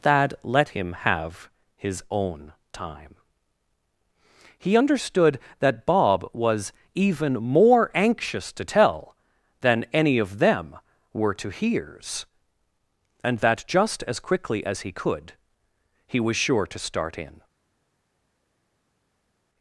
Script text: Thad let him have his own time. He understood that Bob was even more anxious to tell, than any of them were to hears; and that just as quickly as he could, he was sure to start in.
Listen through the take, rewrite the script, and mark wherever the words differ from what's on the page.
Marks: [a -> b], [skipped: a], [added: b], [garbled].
Thad let him have his own time. He understood that Bob was even more anxious to tell, than any of them were to hears; and that just as quickly as he could, he was sure to start in.